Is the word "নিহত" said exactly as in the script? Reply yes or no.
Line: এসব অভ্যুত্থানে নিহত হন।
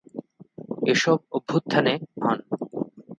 no